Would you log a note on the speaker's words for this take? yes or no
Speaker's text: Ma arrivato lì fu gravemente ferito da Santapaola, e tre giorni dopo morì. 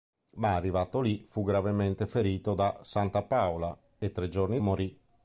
yes